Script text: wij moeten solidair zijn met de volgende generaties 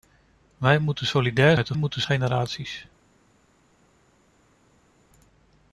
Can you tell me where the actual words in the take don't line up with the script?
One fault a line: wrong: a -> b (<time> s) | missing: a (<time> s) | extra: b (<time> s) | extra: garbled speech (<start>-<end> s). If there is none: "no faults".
missing: zijn (1.6 s)
wrong: volgende -> moeten (1.7 s)